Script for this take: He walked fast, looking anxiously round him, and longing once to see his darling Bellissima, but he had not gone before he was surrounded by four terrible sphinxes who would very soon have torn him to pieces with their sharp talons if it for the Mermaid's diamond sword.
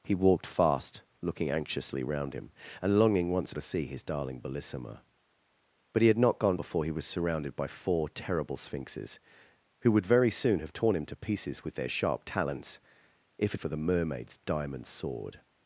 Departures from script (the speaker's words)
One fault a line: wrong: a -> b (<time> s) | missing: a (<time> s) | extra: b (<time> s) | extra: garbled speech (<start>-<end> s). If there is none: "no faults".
no faults